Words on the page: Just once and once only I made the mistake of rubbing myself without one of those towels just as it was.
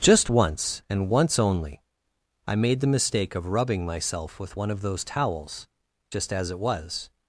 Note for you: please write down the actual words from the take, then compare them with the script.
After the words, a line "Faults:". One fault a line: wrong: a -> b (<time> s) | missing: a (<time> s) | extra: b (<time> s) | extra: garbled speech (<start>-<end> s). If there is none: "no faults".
Just once and once only I made the mistake of rubbing myself with one of those towels just as it was.
Faults:
wrong: without -> with (4.4 s)